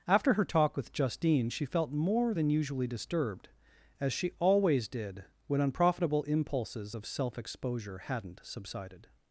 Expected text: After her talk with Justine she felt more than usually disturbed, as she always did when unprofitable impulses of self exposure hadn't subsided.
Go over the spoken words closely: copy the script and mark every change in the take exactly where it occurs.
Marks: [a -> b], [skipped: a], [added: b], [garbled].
After her talk with Justine she felt more than usually disturbed, as she always did when unprofitable impulses of self exposure hadn't subsided.